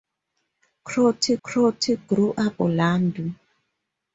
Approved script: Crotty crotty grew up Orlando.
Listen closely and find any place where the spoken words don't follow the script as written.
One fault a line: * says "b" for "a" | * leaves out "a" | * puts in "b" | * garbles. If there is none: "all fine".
all fine